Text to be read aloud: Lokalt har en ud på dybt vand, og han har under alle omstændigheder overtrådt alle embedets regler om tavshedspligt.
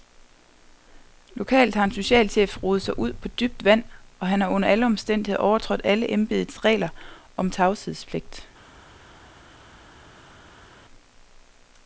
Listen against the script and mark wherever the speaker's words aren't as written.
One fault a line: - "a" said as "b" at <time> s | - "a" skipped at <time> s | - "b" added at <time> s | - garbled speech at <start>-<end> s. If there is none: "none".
- "socialchef rodet sig" added at 1.9 s